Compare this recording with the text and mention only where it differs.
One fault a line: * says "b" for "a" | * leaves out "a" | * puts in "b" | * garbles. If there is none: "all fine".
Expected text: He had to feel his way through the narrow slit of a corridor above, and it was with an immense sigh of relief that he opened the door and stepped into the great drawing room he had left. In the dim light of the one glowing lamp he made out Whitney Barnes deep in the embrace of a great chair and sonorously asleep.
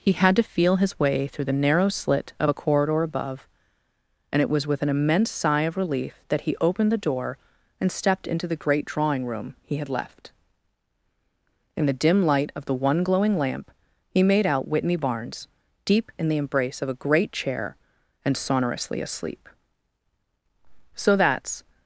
* puts in "So that's"